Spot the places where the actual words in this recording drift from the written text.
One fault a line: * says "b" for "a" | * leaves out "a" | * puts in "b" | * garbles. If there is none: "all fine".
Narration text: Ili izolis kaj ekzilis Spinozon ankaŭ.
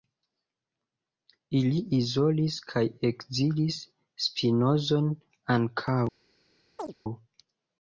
all fine